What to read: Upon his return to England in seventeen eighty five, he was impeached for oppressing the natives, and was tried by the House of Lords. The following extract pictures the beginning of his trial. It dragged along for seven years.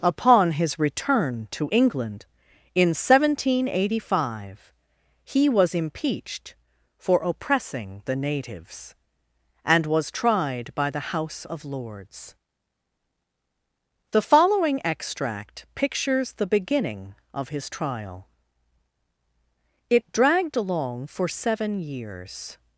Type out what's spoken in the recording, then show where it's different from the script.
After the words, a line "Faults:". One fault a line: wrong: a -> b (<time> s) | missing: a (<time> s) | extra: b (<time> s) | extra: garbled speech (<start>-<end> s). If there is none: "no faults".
Upon his return to England in seventeen eighty five, he was impeached for oppressing the natives, and was tried by the House of Lords. The following extract pictures the beginning of his trial. It dragged along for seven years.
Faults:
no faults